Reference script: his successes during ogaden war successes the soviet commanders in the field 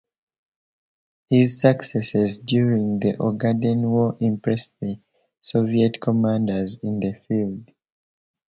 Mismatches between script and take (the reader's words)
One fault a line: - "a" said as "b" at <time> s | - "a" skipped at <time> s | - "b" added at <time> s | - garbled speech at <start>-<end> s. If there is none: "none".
- "the" added at 3.0 s
- "successes" said as "impressed" at 4.2 s